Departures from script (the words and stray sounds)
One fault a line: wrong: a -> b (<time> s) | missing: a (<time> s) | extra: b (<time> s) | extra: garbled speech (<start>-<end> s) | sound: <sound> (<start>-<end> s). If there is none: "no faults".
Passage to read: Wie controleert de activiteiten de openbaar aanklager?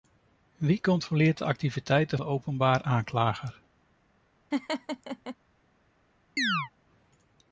sound: laugh (4.5-5.4 s)
sound: chirp (6.4-6.7 s)